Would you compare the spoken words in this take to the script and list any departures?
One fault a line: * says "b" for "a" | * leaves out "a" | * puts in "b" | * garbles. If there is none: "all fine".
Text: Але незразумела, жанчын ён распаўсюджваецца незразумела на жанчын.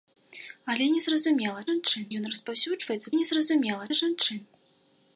all fine